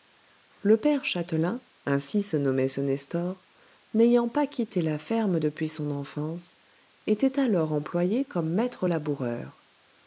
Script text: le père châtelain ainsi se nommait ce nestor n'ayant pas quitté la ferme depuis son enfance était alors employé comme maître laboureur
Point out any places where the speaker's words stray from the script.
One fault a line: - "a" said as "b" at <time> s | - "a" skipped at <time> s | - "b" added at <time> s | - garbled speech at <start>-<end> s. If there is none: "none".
none